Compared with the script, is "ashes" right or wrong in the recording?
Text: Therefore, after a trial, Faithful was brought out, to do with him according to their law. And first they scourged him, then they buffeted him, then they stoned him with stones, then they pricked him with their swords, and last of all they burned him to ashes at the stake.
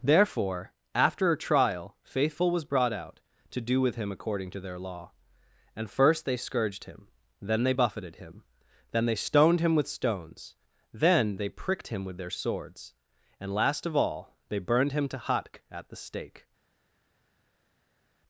wrong